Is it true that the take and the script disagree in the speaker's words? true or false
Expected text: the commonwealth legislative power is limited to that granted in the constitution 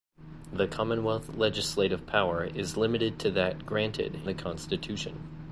true